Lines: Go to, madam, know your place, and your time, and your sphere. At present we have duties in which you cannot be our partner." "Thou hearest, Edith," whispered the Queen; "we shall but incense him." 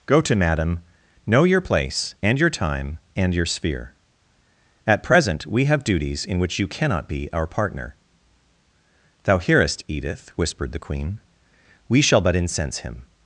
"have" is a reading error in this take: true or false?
false